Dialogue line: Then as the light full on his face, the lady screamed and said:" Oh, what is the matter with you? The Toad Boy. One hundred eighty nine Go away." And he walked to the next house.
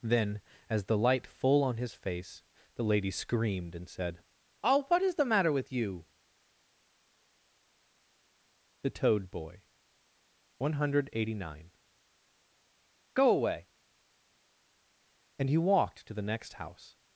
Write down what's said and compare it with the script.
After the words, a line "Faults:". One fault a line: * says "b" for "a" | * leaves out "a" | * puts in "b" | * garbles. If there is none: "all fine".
Then as the light full on his face, the lady screamed and said:" Oh, what is the matter with you? The Toad Boy. One hundred eighty nine Go away." And he walked to the next house.
Faults:
all fine